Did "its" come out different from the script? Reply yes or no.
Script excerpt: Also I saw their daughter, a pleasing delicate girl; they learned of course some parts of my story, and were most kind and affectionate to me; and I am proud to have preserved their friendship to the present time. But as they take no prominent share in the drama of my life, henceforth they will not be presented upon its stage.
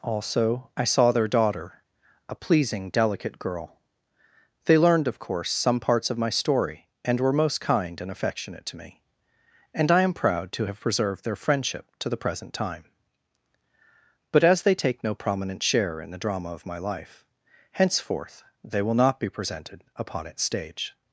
no